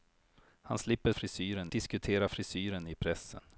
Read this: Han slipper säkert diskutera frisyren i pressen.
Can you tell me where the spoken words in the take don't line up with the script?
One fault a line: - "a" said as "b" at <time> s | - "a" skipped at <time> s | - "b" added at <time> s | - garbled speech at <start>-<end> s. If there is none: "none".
- "säkert" said as "frisyren" at 1.1 s